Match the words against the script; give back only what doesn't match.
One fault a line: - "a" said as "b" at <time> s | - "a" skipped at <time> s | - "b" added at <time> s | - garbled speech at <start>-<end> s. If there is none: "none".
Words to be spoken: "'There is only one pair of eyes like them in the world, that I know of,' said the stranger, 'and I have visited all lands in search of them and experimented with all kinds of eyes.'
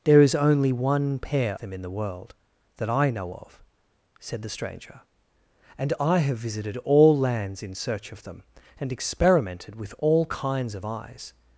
- "of eyes like" skipped at 1.6 s